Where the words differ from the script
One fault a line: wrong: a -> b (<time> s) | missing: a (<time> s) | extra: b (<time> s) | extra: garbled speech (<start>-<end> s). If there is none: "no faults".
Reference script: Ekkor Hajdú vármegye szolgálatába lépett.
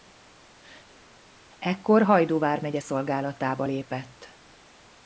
no faults